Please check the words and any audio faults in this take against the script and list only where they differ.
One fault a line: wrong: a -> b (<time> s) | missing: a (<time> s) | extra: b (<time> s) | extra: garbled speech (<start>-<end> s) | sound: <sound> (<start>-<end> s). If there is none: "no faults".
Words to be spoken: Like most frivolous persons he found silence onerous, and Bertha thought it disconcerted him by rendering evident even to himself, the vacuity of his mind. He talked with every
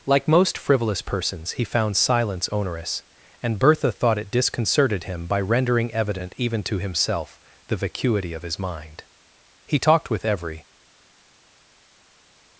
no faults